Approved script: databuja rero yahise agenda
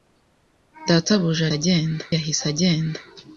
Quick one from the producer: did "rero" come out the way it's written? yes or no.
no